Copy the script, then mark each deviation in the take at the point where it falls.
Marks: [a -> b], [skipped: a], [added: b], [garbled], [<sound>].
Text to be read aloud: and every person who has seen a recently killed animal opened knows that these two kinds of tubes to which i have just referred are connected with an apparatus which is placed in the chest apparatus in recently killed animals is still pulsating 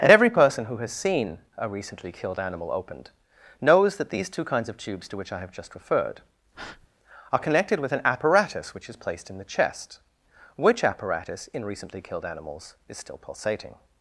and every person who has seen a recently killed animal opened knows that these two kinds of tubes to which i have just referred [breath] are connected with an apparatus which is placed in the chest [added: which] apparatus in recently killed animals is still pulsating